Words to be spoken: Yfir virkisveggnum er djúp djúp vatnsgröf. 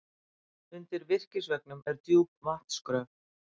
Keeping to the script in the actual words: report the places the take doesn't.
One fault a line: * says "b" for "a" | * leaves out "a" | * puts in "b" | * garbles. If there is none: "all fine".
* says "Undir" for "Yfir"
* leaves out "djúp"